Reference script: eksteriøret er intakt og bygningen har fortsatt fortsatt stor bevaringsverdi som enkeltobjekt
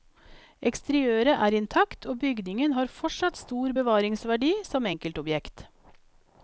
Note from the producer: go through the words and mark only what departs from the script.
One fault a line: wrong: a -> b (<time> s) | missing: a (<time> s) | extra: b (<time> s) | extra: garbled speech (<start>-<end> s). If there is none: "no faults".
missing: fortsatt (3.4 s)